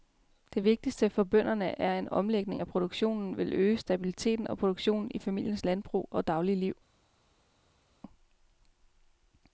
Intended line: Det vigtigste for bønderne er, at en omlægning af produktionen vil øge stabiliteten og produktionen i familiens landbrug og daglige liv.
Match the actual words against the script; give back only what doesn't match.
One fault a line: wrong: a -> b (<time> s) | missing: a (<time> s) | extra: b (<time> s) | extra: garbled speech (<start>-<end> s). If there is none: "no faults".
no faults